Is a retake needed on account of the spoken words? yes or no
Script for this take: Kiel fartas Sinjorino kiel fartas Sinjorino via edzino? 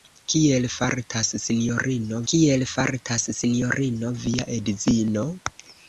no